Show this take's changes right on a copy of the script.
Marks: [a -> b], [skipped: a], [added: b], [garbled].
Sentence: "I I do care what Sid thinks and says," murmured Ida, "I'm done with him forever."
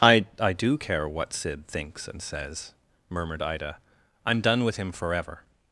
"I I do care what Sid thinks and says," murmured Ida, "I'm done with him forever."